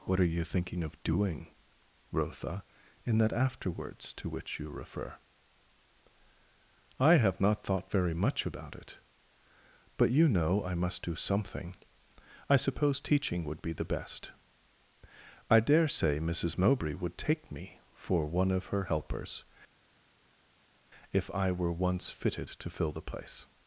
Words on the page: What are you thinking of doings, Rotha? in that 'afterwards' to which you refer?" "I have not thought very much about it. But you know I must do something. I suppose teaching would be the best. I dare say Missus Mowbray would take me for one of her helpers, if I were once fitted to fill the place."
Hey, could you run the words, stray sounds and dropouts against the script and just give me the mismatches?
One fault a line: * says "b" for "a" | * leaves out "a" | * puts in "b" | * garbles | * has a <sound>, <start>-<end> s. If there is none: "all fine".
* says "doing" for "doings"